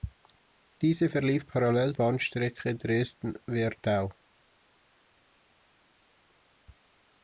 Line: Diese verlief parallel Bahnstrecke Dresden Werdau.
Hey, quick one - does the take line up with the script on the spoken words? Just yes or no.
yes